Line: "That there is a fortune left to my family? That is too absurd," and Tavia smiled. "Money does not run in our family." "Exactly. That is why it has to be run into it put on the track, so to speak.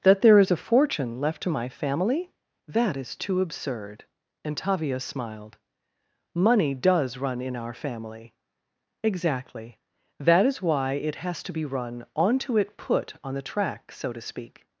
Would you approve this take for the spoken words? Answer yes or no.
no